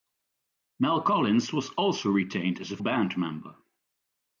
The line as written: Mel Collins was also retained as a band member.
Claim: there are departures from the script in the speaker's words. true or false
false